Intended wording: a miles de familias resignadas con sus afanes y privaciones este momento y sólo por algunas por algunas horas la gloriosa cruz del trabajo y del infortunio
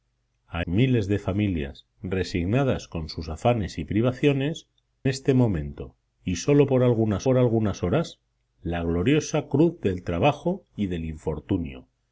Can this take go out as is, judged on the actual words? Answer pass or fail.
pass